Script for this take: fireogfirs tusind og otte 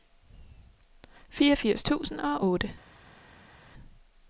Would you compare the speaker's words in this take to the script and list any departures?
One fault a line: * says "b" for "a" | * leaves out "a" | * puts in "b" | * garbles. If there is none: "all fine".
all fine